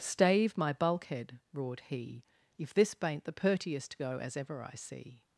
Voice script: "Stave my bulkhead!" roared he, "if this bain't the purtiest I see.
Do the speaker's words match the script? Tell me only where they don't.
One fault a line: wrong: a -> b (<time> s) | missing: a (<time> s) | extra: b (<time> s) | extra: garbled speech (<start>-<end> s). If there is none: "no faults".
extra: go as ever (4.0 s)